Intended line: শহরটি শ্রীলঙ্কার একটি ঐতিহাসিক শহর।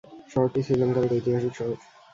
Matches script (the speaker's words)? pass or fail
fail